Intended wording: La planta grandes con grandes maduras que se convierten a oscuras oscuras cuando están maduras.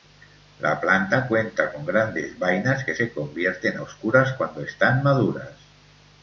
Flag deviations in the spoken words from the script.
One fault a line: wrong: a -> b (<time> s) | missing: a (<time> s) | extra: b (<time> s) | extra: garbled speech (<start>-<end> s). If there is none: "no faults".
wrong: grandes -> cuenta (1.3 s)
wrong: maduras -> vainas (2.4 s)
missing: oscuras (4.3 s)